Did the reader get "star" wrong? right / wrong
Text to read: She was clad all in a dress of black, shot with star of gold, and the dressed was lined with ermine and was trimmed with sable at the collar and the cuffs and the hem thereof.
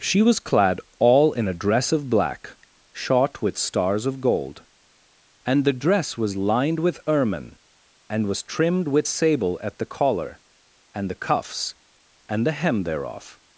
wrong